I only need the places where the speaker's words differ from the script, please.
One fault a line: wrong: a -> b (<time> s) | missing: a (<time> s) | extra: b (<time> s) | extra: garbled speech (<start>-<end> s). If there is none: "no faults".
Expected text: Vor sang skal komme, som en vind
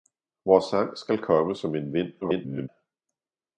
extra: garbled speech (2.2-2.7 s)